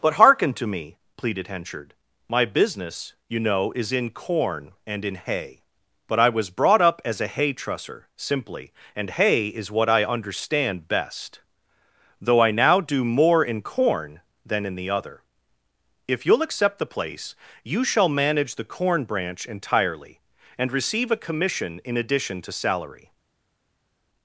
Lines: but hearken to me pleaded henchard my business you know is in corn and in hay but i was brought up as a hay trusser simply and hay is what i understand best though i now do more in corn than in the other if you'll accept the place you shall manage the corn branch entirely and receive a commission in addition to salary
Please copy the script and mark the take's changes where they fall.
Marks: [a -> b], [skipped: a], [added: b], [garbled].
but hearken to me pleaded henchard my business you know is in corn and in hay but i was brought up as a hay trusser simply and hay is what i understand best though i now do more in corn than in the other if you'll accept the place you shall manage the corn branch entirely and receive a commission in addition to salary